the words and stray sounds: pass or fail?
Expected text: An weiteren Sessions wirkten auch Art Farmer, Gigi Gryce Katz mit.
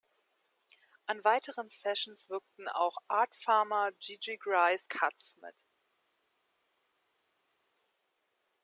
pass